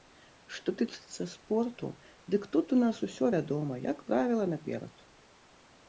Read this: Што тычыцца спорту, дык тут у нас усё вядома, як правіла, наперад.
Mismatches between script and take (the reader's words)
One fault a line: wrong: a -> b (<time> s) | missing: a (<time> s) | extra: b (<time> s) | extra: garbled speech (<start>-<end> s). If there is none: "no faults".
no faults